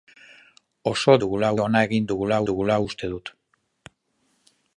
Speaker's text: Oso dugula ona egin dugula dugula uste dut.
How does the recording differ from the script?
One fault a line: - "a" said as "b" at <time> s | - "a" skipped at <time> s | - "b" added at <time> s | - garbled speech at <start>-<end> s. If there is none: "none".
none